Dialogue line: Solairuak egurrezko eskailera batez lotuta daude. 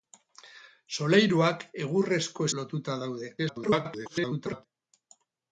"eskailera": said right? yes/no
no